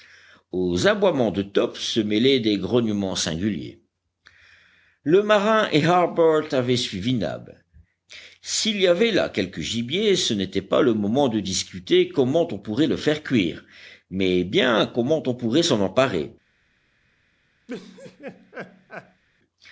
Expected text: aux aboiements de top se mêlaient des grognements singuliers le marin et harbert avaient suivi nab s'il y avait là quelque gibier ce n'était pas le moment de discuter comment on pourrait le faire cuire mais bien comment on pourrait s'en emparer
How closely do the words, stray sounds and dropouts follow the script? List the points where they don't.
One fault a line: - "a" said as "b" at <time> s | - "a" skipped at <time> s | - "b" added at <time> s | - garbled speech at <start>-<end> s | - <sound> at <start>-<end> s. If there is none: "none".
- laugh at 17.7-19.2 s